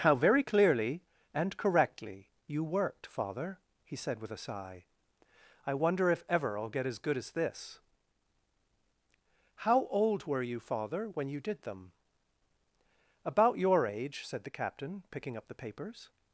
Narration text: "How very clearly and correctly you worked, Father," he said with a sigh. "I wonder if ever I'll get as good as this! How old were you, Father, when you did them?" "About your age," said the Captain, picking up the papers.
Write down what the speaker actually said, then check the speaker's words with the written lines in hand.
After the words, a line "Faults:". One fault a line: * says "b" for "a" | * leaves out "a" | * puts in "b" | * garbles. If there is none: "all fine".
"How very clearly and correctly you worked, Father," he said with a sigh. "I wonder if ever I'll get as good as this! How old were you, Father, when you did them?" "About your age," said the Captain, picking up the papers.
Faults:
all fine